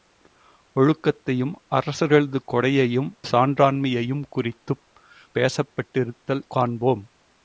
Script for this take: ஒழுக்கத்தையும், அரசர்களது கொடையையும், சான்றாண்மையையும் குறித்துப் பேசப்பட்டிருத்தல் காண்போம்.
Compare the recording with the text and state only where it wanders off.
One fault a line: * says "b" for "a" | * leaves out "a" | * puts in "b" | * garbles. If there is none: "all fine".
all fine